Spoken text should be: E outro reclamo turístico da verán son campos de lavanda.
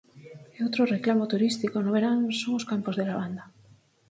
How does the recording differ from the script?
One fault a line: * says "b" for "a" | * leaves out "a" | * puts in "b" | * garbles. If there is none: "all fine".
* says "no" for "da"
* puts in "os"